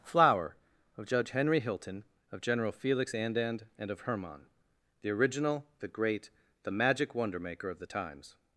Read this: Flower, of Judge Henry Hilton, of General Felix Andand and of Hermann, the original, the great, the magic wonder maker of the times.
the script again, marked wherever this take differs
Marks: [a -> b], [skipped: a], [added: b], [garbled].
Flower, of Judge Henry Hilton, of General Felix Andand and of Hermann, the original, the great, the magic wonder maker of the times.